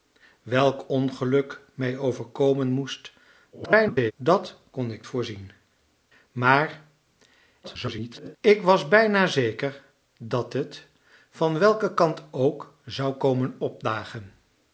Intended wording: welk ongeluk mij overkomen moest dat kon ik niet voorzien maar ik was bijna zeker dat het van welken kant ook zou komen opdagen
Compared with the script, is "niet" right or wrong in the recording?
wrong